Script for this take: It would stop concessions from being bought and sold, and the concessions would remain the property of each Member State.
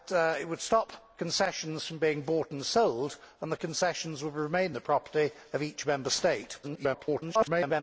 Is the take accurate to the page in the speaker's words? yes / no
no